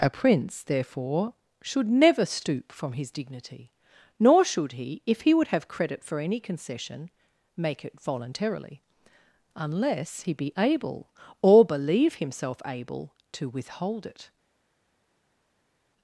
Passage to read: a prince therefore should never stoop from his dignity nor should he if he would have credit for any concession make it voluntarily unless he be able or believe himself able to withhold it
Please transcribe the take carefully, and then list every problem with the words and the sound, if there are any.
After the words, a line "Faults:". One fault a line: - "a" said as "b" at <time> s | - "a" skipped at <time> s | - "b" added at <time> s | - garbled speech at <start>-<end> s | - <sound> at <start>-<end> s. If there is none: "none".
a prince therefore should never stoop from his dignity nor should he if he would have credit for any concession make it voluntarily unless he be able or believe himself able to withhold it
Faults:
none